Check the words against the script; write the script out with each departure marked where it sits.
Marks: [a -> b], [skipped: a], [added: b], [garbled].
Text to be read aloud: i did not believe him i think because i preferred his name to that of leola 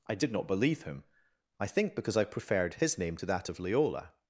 i did not believe him i think because i preferred his name to that of leola